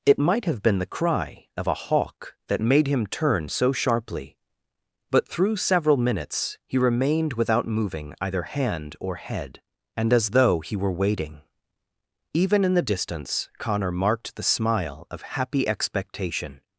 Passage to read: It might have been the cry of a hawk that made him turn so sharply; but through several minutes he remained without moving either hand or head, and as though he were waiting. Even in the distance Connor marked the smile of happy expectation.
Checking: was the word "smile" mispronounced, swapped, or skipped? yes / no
no